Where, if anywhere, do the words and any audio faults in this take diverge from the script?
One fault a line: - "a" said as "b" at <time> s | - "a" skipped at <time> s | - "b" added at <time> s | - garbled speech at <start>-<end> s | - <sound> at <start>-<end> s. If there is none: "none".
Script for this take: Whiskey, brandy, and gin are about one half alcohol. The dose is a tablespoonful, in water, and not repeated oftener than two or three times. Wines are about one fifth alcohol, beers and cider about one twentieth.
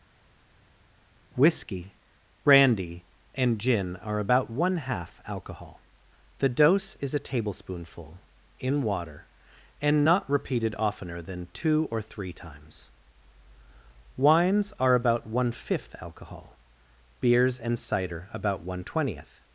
none